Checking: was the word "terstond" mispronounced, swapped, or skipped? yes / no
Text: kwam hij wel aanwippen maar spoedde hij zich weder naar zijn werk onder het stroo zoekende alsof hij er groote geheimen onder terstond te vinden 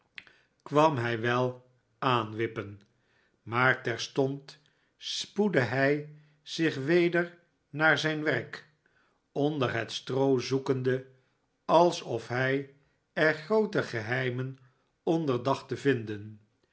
yes